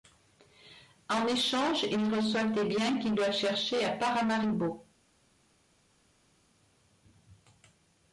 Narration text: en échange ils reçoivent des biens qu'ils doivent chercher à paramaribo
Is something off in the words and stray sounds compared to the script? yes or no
no